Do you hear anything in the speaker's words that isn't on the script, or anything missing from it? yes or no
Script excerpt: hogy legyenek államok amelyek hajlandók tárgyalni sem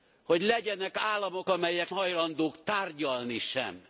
no